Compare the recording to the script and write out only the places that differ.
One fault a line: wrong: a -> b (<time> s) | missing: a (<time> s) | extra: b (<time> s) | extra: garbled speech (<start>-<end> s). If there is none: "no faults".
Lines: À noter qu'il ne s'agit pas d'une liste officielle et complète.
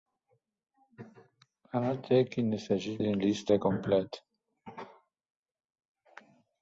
missing: pas (3.0 s)
missing: officielle (3.5 s)